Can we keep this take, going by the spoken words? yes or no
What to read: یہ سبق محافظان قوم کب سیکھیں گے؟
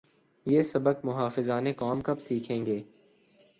yes